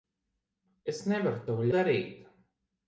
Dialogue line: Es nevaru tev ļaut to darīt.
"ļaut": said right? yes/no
no